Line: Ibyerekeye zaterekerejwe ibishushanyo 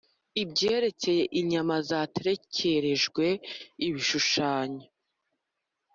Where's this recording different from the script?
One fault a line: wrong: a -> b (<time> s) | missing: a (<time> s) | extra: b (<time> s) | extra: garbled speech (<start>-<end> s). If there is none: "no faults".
extra: inyama (1.4 s)